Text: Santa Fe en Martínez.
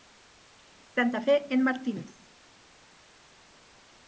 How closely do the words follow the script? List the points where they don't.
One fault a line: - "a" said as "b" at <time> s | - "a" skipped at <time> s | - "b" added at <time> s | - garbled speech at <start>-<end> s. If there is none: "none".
none